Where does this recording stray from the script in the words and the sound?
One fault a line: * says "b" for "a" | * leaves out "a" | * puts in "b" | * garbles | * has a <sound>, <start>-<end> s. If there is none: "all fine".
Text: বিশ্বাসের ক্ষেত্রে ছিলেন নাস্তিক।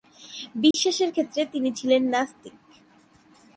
* has a dropout, 0.7-0.7 s
* puts in "তিনি"